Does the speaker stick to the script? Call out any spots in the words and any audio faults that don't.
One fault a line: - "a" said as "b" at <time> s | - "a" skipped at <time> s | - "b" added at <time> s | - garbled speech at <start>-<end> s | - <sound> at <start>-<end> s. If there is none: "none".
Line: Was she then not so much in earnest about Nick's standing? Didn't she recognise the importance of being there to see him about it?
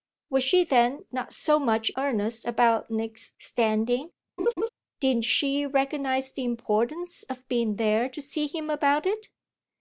- "in" skipped at 1.9 s
- laugh at 4.4-4.7 s